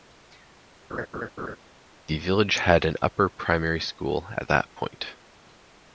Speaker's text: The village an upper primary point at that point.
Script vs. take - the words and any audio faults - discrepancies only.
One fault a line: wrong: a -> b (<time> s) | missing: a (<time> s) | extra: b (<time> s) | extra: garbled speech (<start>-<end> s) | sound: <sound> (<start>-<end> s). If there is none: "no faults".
sound: laugh (0.9-1.6 s)
extra: had (2.5 s)
wrong: point -> school (3.8 s)